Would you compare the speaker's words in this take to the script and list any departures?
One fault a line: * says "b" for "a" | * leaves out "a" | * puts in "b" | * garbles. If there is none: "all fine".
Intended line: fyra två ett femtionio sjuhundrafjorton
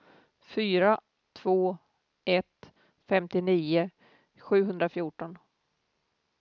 all fine